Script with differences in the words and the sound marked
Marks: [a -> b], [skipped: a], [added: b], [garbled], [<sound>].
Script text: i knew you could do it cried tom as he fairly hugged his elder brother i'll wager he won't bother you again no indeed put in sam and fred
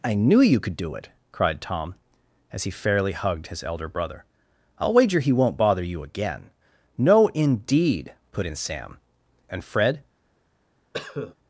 i knew you could do it cried tom as he fairly hugged his elder brother i'll wager he won't bother you again no indeed put in sam and fred [cough]